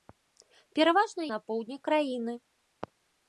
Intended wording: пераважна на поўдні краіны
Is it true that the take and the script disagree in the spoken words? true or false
false